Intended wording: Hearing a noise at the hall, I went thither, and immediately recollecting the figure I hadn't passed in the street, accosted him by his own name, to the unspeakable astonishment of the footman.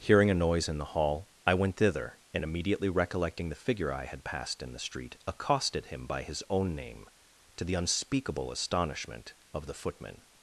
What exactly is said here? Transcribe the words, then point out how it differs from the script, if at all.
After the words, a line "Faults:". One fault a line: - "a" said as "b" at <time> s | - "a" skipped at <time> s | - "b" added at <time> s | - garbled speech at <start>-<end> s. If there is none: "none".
Hearing a noise in the hall, I went thither, and immediately recollecting the figure I had passed in the street, accosted him by his own name, to the unspeakable astonishment of the footman.
Faults:
- "at" said as "in" at 0.7 s
- "hadn't" said as "had" at 4.0 s